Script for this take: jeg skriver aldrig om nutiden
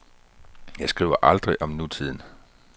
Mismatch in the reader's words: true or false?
false